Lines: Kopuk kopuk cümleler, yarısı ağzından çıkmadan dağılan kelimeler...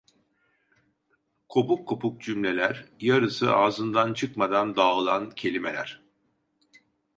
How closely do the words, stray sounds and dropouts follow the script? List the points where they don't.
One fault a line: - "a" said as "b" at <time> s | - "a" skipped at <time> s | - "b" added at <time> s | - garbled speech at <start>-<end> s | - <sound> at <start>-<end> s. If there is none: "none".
none